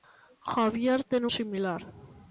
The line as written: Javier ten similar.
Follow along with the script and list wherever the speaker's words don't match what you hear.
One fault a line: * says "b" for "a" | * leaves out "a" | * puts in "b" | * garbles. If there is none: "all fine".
all fine